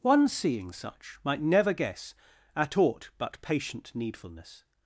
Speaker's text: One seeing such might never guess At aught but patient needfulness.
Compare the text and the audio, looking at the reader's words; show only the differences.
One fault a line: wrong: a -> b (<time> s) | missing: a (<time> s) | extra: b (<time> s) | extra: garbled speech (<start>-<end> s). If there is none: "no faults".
no faults